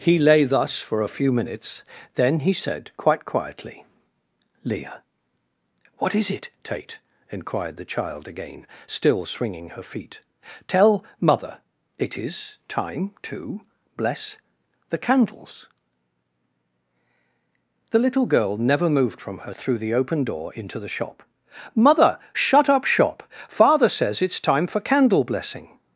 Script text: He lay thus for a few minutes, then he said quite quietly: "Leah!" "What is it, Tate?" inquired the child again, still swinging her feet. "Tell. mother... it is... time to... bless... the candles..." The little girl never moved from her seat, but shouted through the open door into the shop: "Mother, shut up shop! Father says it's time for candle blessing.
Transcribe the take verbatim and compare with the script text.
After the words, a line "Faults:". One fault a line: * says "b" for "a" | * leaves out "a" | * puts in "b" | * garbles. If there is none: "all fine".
He lay thus for a few minutes, then he said quite quietly: "Leah!" "What is it, Tate?" inquired the child again, still swinging her feet. "Tell. mother... it is... time to... bless... the candles..." The little girl never moved from her through the open door into the shop: "Mother, shut up shop! Father says it's time for candle blessing.
Faults:
* leaves out "seat but shouted"